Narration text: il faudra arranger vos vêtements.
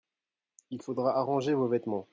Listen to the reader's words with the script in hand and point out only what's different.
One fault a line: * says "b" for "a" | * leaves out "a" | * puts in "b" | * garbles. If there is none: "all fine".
all fine